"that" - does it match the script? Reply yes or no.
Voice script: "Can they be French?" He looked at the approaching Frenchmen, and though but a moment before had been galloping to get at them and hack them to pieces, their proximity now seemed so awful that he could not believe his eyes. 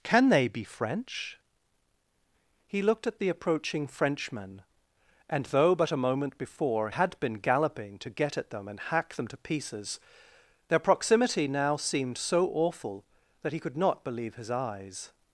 yes